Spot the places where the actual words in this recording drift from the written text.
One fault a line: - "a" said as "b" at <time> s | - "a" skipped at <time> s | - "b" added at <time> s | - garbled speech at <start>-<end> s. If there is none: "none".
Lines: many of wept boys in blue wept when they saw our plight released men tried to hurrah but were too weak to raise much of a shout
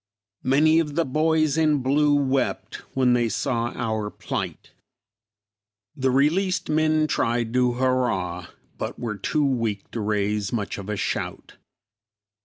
- "wept" said as "the" at 0.9 s
- "the" added at 5.9 s